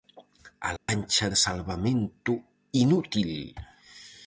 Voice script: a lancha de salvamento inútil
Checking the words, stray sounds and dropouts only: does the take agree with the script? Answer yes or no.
no